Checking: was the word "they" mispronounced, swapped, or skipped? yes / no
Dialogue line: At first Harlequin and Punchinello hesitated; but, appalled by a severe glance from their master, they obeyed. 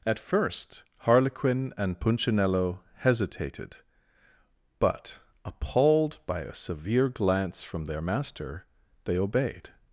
no